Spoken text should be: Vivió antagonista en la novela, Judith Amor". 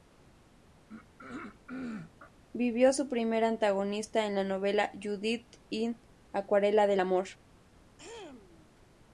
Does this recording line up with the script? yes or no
no